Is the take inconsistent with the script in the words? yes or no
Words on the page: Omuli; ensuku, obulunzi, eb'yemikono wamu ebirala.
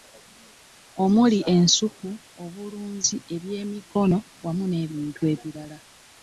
yes